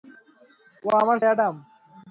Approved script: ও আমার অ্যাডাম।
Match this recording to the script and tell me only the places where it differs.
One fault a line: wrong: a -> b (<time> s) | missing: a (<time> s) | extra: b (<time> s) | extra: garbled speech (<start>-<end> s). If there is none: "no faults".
no faults